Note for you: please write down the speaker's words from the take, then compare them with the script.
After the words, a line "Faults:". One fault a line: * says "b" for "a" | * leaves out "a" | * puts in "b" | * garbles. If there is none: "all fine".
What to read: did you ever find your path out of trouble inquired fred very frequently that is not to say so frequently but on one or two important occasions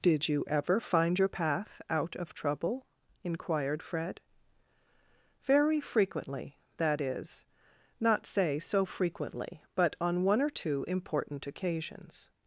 did you ever find your path out of trouble inquired fred very frequently that is not say so frequently but on one or two important occasions
Faults:
* leaves out "to"